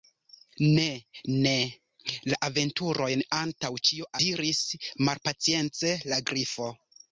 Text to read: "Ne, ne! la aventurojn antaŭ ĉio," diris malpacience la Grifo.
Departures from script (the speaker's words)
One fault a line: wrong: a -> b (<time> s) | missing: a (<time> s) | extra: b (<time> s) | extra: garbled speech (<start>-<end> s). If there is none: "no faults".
no faults